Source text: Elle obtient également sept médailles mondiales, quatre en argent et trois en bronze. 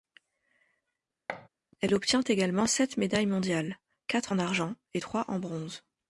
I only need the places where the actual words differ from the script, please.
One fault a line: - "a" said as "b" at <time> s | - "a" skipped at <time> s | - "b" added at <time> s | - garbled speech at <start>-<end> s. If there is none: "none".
none